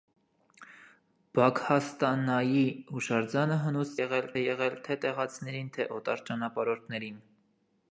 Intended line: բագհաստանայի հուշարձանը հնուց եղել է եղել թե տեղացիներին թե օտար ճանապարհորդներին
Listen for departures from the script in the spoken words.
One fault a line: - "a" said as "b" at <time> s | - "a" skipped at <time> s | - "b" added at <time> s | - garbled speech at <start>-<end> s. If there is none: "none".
none